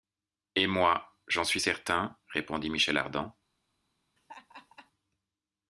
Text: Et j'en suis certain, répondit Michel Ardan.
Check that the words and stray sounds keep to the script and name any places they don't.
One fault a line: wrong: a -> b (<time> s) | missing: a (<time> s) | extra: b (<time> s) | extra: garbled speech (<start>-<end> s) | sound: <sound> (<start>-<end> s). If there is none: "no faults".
extra: moi (0.7 s)
sound: laugh (4.2-4.9 s)